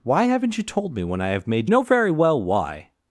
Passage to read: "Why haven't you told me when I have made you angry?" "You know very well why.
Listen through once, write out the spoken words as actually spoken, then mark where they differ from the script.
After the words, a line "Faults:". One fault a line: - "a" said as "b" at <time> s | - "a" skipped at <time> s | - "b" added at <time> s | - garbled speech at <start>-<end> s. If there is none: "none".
"Why haven't you told me when I have made know very well why.
Faults:
- "you angry You" skipped at 1.7 s